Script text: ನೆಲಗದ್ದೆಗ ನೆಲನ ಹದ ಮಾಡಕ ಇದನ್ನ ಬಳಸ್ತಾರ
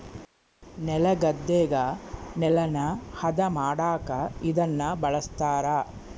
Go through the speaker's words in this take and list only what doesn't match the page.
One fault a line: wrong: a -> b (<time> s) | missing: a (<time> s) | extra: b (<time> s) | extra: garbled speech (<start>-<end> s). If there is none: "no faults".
no faults